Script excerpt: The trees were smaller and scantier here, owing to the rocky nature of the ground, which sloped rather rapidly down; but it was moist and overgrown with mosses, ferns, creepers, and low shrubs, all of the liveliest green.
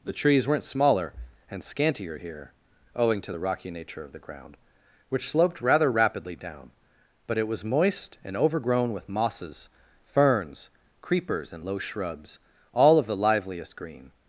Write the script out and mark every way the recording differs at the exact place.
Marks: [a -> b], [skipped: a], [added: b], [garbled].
The trees [were -> weren't] smaller and scantier here, owing to the rocky nature of the ground, which sloped rather rapidly down; but it was moist and overgrown with mosses, ferns, creepers, and low shrubs, all of the liveliest green.